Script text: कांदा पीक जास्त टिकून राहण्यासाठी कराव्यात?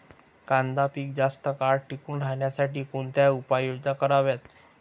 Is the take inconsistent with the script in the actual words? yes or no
yes